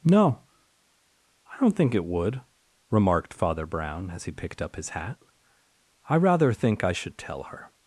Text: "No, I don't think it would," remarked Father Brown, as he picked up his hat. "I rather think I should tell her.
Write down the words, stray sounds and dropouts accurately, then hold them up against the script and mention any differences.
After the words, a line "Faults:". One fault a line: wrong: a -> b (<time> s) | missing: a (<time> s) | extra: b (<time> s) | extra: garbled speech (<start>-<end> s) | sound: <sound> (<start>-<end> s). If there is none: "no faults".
"No, I don't think it would," remarked Father Brown, as he picked up his hat. "I rather think I should tell her.
Faults:
no faults